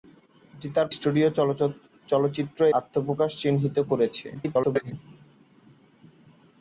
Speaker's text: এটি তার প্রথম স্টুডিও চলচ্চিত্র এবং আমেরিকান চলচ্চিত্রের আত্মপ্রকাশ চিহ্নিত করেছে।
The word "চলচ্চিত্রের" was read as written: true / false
false